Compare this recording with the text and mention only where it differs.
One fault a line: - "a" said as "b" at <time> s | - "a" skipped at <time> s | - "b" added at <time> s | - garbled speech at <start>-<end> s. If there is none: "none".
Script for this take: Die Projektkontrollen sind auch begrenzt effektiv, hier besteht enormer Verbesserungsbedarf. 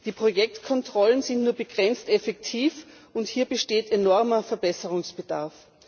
- "auch" said as "nur" at 1.4 s
- "und" added at 3.1 s